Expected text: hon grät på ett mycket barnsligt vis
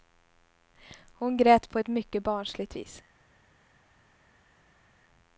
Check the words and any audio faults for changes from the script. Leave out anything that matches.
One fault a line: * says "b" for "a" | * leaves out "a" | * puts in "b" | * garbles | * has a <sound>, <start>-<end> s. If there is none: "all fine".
all fine